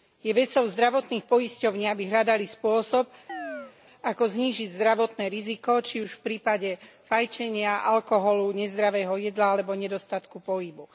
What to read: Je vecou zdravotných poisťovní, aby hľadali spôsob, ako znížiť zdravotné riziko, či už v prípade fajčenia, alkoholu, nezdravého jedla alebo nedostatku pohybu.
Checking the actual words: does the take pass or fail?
pass